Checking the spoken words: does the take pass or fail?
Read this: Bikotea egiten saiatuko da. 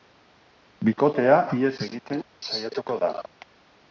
fail